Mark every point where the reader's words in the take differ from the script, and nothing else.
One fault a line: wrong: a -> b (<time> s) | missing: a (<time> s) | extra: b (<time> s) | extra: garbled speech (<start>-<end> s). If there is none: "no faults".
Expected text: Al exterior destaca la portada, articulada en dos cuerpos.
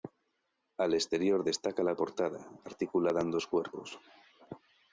no faults